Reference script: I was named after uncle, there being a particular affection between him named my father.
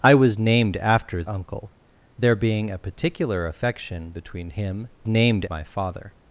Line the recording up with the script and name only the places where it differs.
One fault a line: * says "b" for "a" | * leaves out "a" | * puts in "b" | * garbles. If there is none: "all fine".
all fine